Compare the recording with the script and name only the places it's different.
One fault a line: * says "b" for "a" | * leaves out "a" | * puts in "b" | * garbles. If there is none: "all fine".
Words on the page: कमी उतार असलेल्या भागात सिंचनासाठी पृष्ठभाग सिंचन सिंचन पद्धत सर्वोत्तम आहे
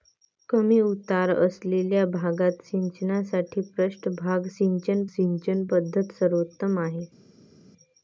all fine